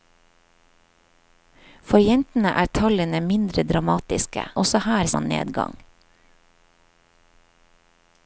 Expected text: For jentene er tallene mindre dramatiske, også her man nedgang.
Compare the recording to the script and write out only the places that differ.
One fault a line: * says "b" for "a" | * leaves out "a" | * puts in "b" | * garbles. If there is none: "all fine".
all fine